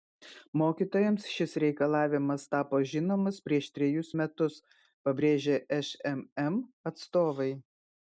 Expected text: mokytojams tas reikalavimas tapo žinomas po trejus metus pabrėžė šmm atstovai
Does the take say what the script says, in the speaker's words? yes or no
no